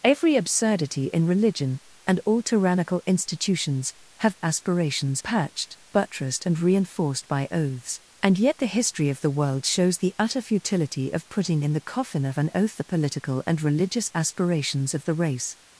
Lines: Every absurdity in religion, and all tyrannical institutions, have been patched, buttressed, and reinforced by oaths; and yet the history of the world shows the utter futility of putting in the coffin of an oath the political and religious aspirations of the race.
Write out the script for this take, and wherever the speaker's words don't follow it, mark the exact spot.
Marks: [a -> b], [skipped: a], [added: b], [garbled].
Every absurdity in religion, and all tyrannical institutions, have [been -> aspirations] patched, buttressed, and reinforced by oaths; and yet the history of the world shows the utter futility of putting in the coffin of an oath the political and religious aspirations of the race.